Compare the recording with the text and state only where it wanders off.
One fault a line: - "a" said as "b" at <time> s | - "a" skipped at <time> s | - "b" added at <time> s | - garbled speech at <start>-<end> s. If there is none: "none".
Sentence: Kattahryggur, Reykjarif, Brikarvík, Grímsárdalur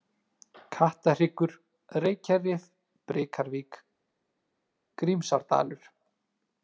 none